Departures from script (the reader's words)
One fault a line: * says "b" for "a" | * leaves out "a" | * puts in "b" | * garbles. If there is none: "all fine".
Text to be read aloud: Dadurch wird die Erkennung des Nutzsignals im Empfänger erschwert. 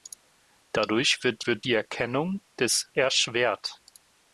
* puts in "wird"
* leaves out "Nutzsignals im Empfänger"